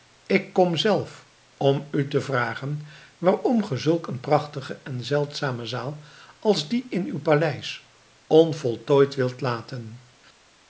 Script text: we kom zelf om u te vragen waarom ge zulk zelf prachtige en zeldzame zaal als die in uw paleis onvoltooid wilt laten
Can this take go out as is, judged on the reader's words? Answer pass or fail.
fail